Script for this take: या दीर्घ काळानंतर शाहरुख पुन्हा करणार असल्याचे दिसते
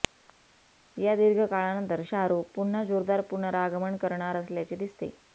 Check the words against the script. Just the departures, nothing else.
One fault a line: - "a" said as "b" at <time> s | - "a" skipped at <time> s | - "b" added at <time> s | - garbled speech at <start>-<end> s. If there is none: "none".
- "जोरदार पुनरागमन" added at 2.8 s